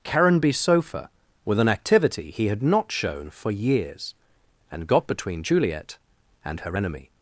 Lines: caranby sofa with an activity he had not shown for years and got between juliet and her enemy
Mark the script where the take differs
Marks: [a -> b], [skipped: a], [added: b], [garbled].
caranby sofa with an activity he had not shown for years and got between juliet and her enemy